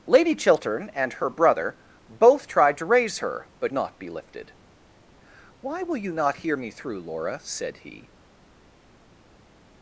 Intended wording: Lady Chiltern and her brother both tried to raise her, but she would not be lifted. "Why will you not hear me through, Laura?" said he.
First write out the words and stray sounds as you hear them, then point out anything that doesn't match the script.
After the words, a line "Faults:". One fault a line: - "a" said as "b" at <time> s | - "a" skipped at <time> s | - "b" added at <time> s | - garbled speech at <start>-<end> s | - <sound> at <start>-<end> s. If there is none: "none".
Lady Chiltern and her brother both tried to raise her, but not be lifted. "Why will you not hear me through, Laura?" said he.
Faults:
- "she would" skipped at 3.7 s